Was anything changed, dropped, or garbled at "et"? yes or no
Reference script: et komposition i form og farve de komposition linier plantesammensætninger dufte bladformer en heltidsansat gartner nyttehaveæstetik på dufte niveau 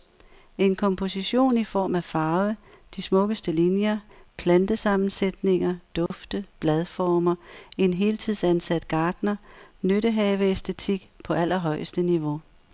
yes